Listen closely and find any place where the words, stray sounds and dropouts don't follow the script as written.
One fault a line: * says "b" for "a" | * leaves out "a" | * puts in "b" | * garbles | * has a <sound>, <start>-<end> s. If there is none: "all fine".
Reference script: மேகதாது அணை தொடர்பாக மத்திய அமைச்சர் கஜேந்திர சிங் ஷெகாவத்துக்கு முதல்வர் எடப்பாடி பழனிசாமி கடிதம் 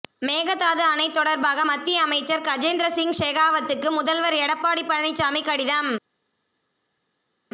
all fine